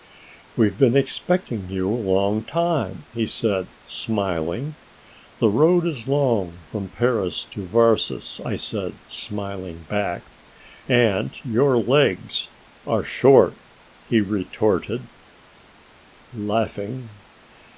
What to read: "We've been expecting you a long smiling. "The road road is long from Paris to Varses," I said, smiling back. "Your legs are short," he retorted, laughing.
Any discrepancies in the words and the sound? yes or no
yes